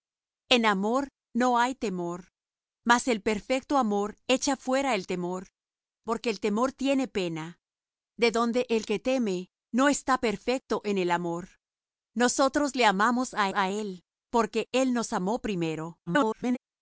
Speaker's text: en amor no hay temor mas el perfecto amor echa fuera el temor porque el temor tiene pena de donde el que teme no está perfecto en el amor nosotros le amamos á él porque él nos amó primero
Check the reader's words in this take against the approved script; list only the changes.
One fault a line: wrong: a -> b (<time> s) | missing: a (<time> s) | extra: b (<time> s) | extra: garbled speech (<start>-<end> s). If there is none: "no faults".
extra: á (13.5 s)
extra: garbled speech (16.1-16.6 s)